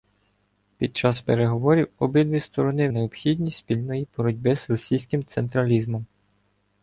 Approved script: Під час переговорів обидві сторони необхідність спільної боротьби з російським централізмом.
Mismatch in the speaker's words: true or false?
false